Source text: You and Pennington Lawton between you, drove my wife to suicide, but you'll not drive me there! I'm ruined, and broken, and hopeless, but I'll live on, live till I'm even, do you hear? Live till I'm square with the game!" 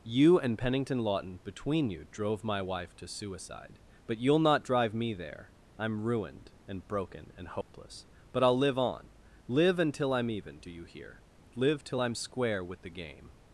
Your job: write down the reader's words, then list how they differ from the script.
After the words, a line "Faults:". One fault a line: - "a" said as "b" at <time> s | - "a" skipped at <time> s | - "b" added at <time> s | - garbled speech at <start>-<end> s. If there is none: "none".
You and Pennington Lawton between you, drove my wife to suicide, but you'll not drive me there! I'm ruined, and broken, and hopeless, but I'll live on, live until I'm even, do you hear? Live till I'm square with the game!"
Faults:
- "till" said as "until" at 9.8 s